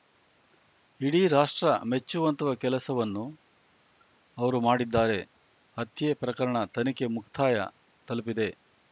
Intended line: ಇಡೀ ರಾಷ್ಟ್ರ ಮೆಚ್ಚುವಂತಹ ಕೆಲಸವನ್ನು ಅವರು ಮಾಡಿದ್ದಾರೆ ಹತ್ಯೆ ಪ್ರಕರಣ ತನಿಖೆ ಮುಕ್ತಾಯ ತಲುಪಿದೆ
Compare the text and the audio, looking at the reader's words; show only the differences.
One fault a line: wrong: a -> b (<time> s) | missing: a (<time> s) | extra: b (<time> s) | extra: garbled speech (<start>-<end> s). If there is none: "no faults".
no faults